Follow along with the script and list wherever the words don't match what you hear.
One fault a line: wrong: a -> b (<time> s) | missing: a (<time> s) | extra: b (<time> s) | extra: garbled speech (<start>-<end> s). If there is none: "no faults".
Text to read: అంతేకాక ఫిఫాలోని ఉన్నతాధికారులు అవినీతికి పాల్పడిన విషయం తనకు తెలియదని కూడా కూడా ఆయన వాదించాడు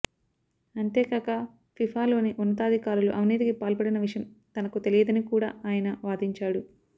missing: కూడా (5.5 s)